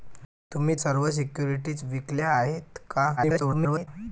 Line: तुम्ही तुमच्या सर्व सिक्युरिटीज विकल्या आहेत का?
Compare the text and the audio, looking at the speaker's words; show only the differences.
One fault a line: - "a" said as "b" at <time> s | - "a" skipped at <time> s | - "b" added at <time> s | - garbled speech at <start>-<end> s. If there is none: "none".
- "तुमच्या" skipped at 0.8 s
- garbled speech at 3.2-3.9 s